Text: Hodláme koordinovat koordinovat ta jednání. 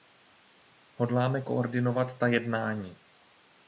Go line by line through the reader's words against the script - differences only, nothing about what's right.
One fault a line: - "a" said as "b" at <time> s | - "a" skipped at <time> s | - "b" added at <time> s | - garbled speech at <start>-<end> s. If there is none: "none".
- "koordinovat" skipped at 2.2 s